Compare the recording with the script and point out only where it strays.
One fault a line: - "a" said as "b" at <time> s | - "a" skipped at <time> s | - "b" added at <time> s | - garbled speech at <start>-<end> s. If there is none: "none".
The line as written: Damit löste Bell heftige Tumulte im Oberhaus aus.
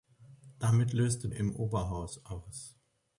- "Bell heftige Tumulte" skipped at 1.3 s